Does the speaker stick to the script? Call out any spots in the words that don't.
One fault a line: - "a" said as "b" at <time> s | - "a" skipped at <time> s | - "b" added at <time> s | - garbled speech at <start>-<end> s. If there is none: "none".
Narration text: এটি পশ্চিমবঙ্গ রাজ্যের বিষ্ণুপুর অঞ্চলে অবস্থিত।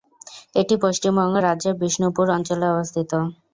none